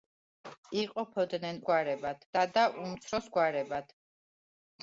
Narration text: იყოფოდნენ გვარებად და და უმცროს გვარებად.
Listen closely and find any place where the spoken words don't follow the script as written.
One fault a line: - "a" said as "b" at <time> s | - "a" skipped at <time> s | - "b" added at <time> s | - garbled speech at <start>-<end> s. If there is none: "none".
none